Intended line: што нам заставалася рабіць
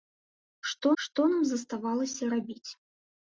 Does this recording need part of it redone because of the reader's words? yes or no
yes